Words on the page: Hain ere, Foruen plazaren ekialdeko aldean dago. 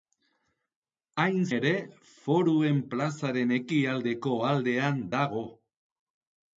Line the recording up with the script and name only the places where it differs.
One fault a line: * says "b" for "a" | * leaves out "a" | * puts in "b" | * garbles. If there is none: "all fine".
all fine